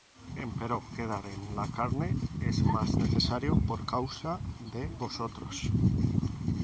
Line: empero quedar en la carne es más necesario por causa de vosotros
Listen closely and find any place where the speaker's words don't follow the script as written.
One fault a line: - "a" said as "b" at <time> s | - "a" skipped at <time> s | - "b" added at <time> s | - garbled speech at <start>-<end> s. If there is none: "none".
none